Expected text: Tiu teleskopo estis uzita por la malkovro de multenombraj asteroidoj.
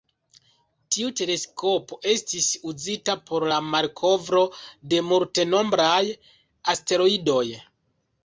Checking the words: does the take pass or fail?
pass